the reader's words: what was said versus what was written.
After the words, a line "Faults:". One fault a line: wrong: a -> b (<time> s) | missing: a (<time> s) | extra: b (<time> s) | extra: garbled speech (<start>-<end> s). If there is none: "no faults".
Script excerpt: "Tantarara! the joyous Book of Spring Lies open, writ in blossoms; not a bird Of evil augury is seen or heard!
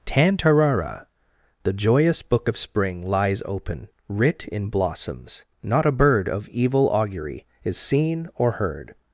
"Tantarara! the joyous Book of Spring Lies open, writ in blossoms; not a bird Of evil augury is seen or heard!
Faults:
no faults